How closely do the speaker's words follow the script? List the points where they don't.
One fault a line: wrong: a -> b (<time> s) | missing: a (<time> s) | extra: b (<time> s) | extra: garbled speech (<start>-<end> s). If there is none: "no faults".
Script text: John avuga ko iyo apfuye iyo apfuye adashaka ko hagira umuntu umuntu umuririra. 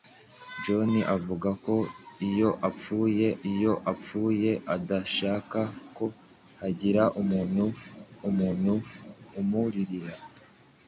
no faults